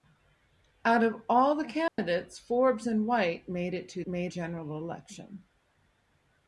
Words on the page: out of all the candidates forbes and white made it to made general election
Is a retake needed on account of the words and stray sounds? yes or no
yes